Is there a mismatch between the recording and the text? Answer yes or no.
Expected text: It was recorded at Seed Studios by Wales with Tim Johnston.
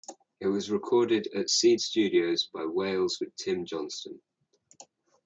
no